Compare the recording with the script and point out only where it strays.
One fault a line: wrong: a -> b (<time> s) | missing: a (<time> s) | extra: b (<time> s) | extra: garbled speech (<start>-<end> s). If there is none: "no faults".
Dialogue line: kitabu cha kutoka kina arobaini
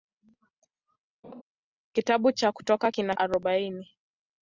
no faults